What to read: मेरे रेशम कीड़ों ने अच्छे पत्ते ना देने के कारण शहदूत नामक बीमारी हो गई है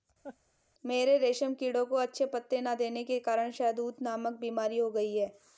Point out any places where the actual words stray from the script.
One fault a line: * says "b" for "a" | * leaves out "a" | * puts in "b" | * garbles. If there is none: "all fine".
* says "को" for "ने"